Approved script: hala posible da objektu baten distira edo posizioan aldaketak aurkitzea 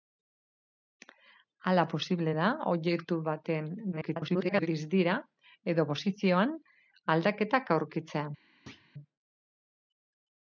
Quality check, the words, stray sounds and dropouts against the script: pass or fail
fail